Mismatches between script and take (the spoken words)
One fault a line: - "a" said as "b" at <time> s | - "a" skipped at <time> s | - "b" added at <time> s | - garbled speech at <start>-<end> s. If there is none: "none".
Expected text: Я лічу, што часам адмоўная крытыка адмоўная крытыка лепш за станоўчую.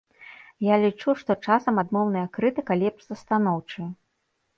- "адмоўная крытыка" skipped at 2.8 s